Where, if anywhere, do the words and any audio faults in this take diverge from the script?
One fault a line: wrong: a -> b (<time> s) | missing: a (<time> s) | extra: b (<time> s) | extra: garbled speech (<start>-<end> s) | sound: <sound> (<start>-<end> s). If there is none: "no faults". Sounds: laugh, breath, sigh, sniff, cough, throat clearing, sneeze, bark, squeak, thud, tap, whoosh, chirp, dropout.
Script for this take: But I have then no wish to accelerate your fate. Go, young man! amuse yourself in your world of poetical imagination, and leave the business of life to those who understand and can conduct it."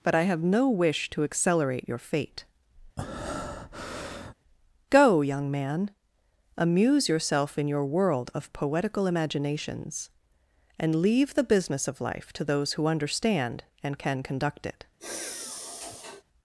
missing: then (0.4 s)
sound: breath (3.0-4.3 s)
wrong: imagination -> imaginations (9.1 s)
sound: sigh (15.0-16.2 s)